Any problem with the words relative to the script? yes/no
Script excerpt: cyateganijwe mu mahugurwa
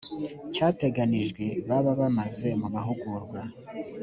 yes